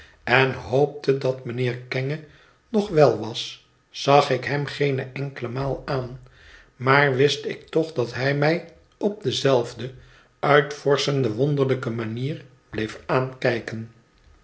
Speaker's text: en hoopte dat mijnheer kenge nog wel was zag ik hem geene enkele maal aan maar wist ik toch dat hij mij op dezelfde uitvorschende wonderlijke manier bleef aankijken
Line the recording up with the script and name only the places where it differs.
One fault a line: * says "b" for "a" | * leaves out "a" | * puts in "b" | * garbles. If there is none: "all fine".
all fine